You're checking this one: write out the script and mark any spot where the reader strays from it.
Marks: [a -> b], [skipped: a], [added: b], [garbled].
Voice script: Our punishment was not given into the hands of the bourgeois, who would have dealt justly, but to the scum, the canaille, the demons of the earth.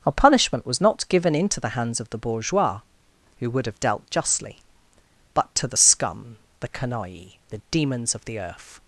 Our punishment was not given into the hands of the bourgeois, who would have dealt justly, but to the scum, the canaille, the demons of the earth.